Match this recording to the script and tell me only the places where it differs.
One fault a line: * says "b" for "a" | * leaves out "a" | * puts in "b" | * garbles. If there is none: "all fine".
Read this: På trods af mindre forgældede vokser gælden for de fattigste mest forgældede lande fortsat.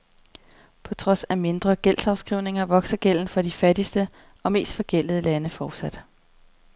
* says "gældsafskrivninger" for "forgældede"
* puts in "og"